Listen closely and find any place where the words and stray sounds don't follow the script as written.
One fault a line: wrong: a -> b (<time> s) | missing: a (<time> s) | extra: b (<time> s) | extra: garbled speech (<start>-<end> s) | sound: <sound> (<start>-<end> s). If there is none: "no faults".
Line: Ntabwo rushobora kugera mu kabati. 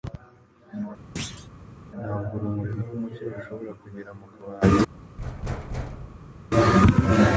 sound: thud (1.2-1.5 s)
extra: urumuri rwumucyo (2.4 s)
sound: thud (5.2-6.4 s)